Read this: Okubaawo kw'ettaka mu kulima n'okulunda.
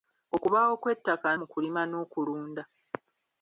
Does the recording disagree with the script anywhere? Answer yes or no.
no